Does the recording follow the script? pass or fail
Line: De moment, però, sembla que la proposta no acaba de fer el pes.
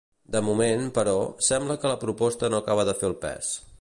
pass